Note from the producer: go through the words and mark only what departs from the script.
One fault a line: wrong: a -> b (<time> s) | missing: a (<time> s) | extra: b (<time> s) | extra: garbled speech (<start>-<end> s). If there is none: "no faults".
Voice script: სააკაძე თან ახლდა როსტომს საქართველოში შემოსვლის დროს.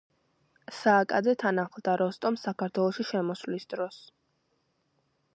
no faults